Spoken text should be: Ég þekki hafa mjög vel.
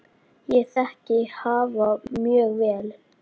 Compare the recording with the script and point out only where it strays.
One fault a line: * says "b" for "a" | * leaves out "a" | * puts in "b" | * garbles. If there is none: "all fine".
all fine